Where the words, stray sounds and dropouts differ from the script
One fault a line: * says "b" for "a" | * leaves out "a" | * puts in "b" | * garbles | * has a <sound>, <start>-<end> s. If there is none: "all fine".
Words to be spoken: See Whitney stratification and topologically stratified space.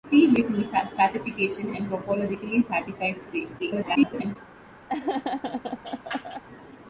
* garbles
* has a laugh, 4.9-6.4 s